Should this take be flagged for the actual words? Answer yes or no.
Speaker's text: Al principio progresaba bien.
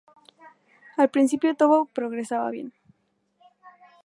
yes